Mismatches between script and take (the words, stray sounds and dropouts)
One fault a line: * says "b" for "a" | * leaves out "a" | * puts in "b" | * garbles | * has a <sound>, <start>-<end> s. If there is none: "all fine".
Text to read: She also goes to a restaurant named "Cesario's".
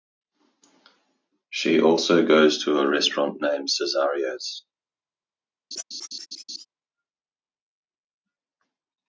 * has a laugh, 5.7-6.7 s